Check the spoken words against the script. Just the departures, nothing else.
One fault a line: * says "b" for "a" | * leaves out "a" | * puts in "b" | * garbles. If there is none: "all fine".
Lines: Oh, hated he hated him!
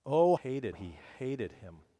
all fine